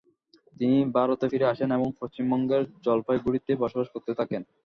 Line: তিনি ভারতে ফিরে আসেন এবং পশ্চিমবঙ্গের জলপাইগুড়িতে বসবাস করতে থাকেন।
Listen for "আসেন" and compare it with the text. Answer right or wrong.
right